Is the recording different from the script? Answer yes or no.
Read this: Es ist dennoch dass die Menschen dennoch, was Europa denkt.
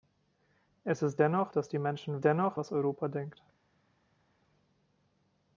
no